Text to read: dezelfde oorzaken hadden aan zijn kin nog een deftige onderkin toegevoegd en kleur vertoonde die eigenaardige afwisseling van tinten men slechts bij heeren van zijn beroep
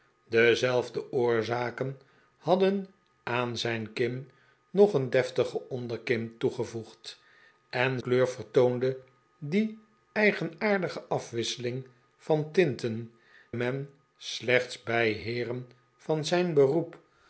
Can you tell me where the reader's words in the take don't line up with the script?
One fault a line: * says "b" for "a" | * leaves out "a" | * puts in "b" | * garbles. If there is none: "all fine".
all fine